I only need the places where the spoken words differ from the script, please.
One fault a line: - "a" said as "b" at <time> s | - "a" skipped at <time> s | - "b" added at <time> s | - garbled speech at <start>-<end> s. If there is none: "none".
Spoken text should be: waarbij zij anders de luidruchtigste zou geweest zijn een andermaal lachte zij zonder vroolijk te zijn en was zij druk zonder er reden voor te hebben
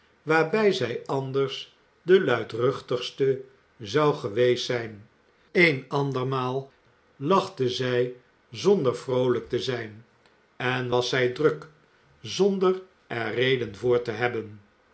none